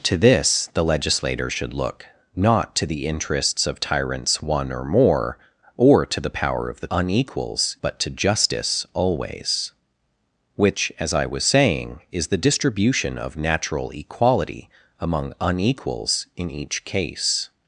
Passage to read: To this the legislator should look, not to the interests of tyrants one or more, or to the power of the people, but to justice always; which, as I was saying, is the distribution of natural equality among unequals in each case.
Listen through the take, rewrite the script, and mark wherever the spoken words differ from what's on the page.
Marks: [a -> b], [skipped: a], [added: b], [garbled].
To this the legislator should look, not to the interests of tyrants one or more, or to the power of the [people, -> unequals] but to justice always; which, as I was saying, is the distribution of natural equality among unequals in each case.